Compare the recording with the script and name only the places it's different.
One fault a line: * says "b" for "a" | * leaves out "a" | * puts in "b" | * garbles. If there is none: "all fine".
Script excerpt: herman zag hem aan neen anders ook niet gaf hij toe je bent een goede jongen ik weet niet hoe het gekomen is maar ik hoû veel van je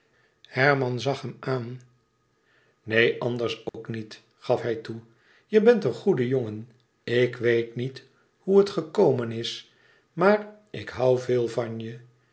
all fine